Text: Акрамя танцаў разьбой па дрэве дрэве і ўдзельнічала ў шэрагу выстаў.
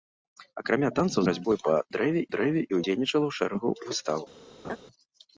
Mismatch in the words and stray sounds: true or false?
true